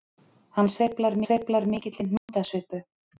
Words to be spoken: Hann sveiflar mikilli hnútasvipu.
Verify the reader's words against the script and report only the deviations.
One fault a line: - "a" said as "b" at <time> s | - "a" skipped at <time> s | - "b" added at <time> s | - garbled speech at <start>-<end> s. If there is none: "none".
- "sveiflar" added at 1.2 s